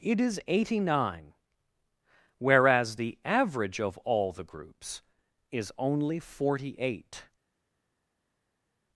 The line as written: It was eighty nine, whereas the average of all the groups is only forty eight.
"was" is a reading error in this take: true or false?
true